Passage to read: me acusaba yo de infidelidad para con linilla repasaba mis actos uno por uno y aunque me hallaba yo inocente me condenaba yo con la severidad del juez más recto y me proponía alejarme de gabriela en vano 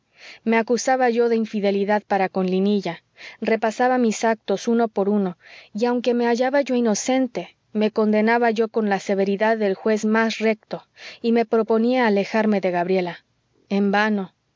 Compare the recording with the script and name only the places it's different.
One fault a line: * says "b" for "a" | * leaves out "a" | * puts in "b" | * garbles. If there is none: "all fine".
all fine